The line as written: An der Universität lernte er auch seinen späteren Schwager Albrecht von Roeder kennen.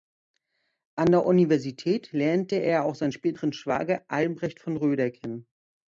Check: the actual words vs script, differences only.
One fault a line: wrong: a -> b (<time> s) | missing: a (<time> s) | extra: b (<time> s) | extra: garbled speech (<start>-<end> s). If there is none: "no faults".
no faults